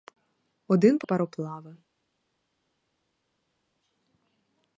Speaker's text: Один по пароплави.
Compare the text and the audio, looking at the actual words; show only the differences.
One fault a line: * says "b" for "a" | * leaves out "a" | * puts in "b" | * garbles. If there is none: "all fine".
all fine